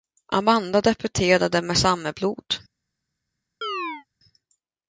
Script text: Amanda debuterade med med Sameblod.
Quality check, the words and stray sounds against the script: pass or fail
fail